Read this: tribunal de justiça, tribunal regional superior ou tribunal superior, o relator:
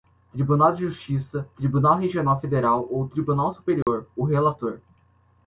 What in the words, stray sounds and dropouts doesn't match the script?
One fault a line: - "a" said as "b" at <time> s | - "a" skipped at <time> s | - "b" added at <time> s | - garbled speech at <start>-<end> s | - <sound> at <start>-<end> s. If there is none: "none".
- "superior" said as "federal" at 2.4 s
- dropout at 3.8-3.9 s